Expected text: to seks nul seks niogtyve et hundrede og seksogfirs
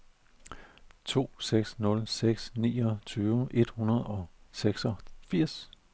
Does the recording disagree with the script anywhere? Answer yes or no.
no